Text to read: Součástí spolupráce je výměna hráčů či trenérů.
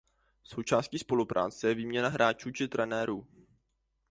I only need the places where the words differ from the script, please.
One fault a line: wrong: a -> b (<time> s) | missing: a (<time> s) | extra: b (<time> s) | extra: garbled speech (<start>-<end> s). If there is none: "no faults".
no faults